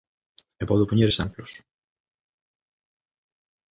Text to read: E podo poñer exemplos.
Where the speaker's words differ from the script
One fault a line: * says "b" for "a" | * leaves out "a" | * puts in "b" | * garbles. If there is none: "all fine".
all fine